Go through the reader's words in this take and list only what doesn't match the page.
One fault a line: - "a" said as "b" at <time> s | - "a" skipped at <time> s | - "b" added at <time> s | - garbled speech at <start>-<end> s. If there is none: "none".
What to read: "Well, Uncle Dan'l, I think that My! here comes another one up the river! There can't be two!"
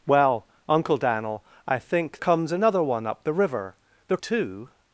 - "that My here" skipped at 2.2 s
- "can't be" skipped at 4.2 s